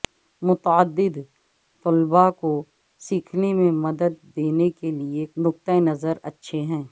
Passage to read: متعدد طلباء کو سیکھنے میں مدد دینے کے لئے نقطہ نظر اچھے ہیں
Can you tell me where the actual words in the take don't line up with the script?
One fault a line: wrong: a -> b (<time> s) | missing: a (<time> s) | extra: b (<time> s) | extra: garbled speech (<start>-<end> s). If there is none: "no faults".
no faults